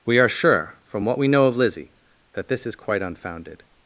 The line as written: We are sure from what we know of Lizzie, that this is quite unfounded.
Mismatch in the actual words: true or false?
false